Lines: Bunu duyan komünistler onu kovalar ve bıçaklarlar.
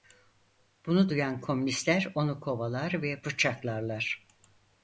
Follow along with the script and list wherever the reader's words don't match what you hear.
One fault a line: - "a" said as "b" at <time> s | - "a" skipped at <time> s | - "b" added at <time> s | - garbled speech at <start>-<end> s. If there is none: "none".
none